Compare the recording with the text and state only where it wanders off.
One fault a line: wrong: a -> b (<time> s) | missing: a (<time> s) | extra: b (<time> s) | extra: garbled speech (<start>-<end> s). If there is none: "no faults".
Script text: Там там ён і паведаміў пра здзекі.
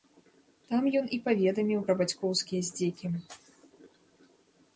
missing: там (0.9 s)
extra: бацькоўскія (2.0 s)